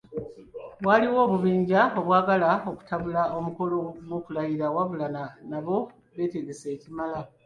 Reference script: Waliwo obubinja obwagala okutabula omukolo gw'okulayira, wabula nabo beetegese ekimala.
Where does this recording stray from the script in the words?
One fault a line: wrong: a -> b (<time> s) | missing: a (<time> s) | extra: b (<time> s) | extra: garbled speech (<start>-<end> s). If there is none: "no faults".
no faults